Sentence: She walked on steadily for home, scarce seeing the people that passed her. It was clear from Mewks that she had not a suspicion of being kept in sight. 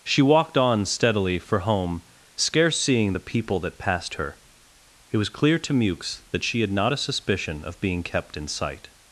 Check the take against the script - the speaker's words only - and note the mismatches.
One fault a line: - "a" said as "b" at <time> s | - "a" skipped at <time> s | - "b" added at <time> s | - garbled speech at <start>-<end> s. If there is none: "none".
- "from" said as "to" at 5.6 s